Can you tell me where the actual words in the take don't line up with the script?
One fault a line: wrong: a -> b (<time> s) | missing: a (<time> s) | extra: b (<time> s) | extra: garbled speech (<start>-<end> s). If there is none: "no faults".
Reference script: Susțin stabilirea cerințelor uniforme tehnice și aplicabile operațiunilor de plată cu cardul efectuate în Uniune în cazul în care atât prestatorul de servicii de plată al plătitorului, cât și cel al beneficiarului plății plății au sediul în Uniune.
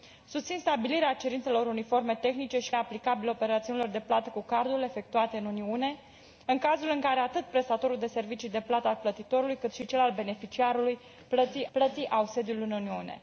no faults